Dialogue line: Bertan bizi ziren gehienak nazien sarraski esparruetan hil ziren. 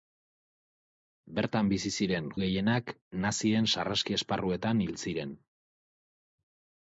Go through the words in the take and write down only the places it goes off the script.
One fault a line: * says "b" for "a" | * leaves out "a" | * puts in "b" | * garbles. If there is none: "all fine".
all fine